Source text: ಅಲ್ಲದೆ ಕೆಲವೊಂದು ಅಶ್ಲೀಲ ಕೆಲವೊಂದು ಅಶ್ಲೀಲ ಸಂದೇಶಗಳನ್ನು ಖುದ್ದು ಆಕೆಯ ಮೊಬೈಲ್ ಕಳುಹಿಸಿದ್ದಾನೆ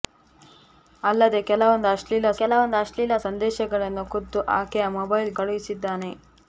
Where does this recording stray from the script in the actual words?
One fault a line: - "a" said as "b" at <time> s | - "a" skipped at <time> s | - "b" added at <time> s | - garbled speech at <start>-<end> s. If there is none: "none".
none